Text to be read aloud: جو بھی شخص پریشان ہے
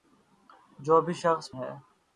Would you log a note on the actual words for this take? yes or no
yes